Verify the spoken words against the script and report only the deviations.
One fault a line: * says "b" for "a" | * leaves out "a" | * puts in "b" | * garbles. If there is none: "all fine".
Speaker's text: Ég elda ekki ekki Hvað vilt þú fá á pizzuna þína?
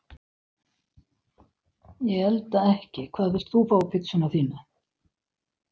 * leaves out "ekki"